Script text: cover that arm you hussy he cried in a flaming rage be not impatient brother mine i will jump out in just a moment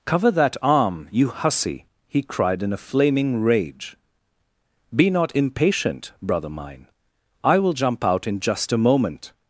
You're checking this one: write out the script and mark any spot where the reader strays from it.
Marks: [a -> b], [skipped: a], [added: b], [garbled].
cover that arm you hussy he cried in a flaming rage be not impatient brother mine i will jump out in just a moment